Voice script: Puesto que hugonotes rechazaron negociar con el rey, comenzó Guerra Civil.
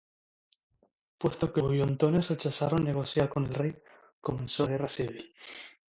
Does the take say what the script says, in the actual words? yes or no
yes